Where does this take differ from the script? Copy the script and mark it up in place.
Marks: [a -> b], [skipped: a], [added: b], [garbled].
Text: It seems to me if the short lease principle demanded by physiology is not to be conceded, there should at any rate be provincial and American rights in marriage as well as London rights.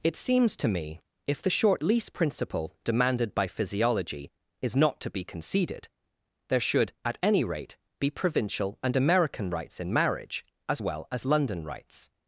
It seems to me if the short lease principle demanded by physiology is not to be conceded, there should at any rate be provincial and American rights in marriage as well as London rights.